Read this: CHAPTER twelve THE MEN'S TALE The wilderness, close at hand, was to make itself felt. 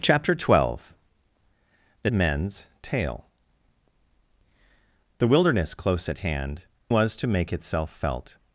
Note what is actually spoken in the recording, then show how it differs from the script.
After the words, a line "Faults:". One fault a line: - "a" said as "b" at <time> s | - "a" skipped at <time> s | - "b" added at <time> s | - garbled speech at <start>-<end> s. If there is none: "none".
CHAPTER twelve THE MEN'S TALE The wilderness, close at hand, was to make itself felt.
Faults:
none